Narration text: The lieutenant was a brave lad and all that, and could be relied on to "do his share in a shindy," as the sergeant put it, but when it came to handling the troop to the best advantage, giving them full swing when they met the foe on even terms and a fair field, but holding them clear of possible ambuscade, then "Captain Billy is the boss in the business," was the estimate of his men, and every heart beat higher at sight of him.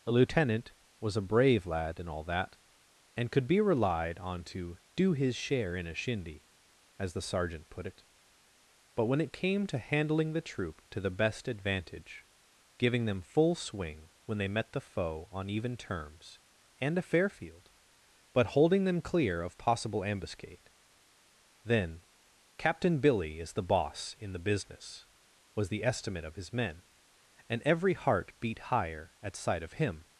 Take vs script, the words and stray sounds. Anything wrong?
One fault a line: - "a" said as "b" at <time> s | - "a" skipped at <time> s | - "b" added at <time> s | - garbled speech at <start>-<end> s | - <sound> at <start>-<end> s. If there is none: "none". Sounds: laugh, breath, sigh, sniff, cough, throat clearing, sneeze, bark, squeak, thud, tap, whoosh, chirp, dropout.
- "The" said as "A" at 0.1 s